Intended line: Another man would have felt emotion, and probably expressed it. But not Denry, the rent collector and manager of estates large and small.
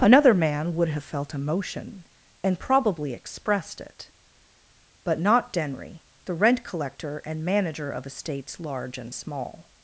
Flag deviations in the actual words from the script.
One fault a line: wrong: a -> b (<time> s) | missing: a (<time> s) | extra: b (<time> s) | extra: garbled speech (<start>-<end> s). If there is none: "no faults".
no faults